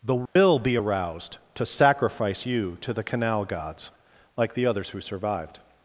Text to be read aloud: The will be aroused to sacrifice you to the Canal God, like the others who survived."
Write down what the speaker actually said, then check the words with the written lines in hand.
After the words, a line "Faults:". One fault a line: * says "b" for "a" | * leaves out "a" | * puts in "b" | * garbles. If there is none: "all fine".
The will be aroused to sacrifice you to the Canal Gods, like the others who survived."
Faults:
* says "Gods" for "God"